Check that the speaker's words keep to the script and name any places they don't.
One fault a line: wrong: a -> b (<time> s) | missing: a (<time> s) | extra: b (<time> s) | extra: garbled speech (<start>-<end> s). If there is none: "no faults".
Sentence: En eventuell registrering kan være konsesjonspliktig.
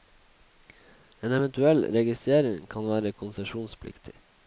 no faults